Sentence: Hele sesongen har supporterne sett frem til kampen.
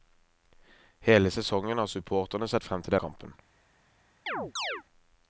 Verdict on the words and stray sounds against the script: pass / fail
fail